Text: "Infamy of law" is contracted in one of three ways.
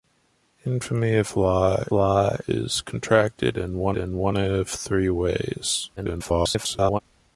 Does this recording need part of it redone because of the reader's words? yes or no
yes